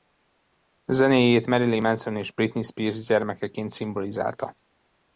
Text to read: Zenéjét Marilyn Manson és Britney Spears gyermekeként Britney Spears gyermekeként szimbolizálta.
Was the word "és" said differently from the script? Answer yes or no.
no